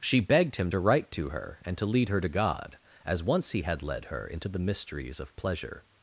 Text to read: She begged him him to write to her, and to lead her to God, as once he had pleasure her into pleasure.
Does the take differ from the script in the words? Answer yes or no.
yes